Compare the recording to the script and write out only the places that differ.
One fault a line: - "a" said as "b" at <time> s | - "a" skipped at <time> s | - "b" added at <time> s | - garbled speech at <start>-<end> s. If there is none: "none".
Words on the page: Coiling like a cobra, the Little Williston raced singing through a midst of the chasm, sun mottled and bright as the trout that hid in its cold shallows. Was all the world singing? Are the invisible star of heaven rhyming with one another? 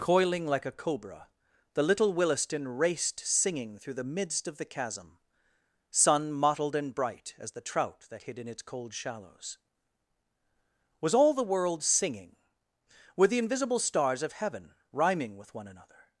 - "a" said as "the" at 3.9 s
- "Are" said as "Were" at 13.2 s
- "star" said as "stars" at 13.8 s